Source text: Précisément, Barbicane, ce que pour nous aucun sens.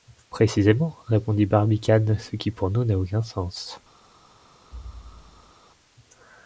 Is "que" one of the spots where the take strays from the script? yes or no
yes